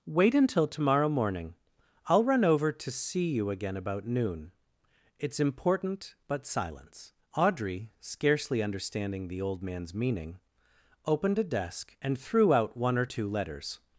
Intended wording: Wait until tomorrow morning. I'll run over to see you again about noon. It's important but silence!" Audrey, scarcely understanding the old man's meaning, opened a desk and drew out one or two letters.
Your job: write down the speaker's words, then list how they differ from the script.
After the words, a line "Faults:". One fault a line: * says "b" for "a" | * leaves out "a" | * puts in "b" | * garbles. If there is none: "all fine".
Wait until tomorrow morning. I'll run over to see you again about noon. It's important but silence!" Audrey, scarcely understanding the old man's meaning, opened a desk and threw out one or two letters.
Faults:
* says "threw" for "drew"